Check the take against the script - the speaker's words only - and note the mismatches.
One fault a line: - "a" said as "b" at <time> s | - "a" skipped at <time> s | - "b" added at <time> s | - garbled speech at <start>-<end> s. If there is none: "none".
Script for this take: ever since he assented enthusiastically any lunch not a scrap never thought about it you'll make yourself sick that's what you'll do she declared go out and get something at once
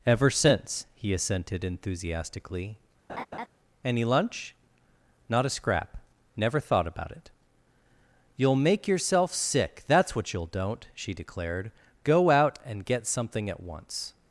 - "do" said as "don't" at 10.5 s